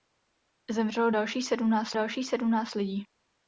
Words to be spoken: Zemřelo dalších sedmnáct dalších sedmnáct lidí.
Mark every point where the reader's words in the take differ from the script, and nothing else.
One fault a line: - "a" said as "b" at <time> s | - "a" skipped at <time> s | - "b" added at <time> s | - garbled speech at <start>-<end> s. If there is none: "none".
none